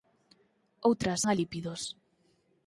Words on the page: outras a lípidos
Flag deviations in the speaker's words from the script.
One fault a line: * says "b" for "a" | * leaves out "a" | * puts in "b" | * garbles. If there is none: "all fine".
all fine